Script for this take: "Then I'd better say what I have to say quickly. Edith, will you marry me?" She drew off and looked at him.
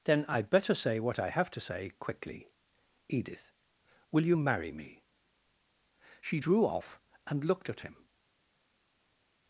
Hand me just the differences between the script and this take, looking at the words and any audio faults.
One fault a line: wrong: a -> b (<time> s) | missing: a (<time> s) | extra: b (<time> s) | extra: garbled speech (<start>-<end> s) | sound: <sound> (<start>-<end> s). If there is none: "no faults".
no faults